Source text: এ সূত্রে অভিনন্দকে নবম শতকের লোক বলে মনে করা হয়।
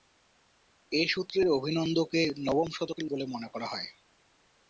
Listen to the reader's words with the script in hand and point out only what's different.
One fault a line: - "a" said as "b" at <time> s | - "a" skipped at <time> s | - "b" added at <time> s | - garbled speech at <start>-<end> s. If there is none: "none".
- "লোক" skipped at 3.0 s